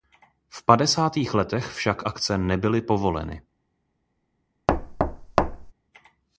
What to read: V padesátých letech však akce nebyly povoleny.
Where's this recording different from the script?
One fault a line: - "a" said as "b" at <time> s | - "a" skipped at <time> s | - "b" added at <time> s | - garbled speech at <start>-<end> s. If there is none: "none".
none